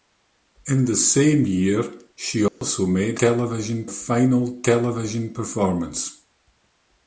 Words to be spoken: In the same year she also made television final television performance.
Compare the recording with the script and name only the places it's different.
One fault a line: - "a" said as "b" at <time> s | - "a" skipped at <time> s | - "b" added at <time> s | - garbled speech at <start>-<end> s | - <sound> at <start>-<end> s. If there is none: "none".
- dropout at 2.5-2.6 s